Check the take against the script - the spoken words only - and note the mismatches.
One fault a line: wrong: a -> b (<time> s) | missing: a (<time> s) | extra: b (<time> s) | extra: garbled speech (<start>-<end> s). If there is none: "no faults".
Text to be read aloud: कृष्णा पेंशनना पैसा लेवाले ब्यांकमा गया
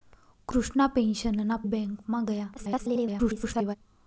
missing: पैसा लेवाले (1.6 s)
extra: garbled speech (2.6-3.8 s)